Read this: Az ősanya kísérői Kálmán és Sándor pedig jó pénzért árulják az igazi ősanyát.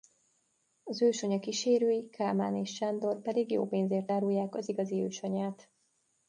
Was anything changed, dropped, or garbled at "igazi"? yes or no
no